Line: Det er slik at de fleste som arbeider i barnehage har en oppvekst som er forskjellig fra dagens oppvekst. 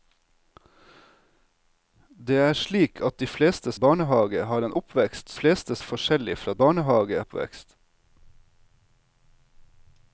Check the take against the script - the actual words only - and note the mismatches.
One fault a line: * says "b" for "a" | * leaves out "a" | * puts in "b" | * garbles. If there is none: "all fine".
* leaves out "som arbeider"
* says "fleste" for "som"
* says "barnehage" for "dagens"